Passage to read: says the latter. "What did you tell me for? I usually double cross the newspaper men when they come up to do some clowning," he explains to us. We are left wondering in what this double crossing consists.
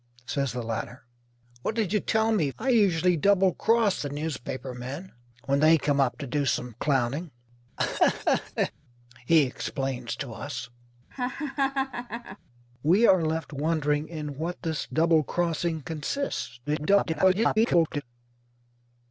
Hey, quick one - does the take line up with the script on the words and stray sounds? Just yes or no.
no